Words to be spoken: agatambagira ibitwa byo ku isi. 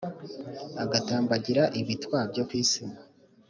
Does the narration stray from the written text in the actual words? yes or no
no